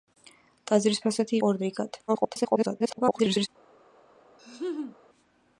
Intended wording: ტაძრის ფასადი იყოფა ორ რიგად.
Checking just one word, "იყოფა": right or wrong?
wrong